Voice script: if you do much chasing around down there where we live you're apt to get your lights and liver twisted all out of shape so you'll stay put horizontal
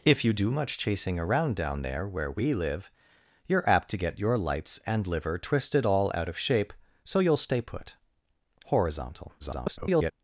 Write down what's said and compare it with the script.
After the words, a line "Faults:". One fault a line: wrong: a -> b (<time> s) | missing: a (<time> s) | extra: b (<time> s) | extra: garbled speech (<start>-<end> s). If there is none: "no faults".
if you do much chasing around down there where we live you're apt to get your lights and liver twisted all out of shape so you'll stay put horizontal [garbled]
Faults:
extra: garbled speech (9.4-10.1 s)